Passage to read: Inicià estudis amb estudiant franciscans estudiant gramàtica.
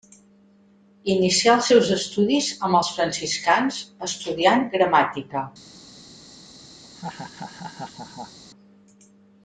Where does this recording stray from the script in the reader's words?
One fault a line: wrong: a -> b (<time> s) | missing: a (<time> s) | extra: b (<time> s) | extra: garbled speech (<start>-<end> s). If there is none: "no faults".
extra: els seus (1.6 s)
wrong: estudiant -> els (2.8 s)